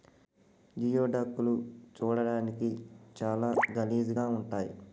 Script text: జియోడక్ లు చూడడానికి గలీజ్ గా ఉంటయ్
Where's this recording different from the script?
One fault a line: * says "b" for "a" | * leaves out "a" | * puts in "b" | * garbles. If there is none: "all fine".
* puts in "చాలా"